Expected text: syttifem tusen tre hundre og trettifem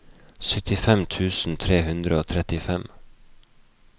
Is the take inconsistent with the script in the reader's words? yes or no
no